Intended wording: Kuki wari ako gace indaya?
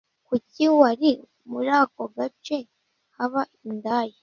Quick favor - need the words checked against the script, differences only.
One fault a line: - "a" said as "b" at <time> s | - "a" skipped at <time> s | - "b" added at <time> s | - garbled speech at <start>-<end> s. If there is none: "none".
- "muri" added at 1.5 s
- "haba" added at 3.2 s